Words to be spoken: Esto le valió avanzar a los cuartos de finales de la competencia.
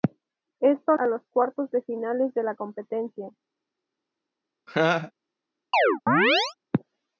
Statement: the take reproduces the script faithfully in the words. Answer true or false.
false